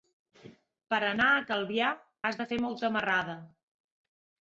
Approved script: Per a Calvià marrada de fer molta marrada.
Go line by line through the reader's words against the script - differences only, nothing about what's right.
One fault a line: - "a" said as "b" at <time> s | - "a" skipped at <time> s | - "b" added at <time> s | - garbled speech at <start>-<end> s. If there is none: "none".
- "anar" added at 1.1 s
- "marrada" said as "has" at 2.3 s